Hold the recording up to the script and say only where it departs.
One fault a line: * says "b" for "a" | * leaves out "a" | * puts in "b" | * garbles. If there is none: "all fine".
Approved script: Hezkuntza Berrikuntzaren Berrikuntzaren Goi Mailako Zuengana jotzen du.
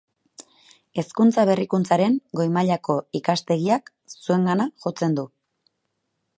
* leaves out "Berrikuntzaren"
* puts in "Ikastegiak"